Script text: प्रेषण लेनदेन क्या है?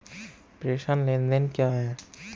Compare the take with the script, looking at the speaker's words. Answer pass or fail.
pass